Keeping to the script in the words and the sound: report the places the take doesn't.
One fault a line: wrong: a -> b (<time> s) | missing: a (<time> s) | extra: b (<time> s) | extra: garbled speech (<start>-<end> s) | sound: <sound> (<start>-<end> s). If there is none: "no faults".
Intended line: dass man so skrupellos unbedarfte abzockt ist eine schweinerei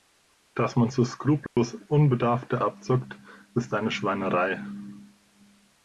sound: dropout (1.5-1.6 s)